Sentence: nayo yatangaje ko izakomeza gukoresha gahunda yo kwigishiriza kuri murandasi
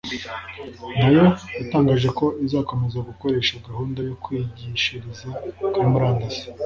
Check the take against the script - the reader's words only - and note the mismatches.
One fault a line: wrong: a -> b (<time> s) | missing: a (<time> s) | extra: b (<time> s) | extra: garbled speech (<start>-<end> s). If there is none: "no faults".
no faults